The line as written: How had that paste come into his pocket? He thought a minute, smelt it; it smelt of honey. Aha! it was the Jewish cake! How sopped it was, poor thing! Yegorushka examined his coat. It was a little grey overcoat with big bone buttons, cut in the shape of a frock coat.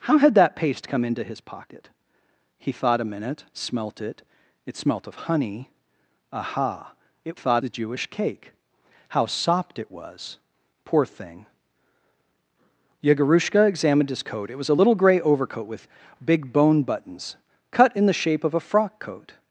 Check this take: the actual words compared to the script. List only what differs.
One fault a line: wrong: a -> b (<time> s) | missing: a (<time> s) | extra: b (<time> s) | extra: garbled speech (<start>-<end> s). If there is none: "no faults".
wrong: was -> thought (7.3 s)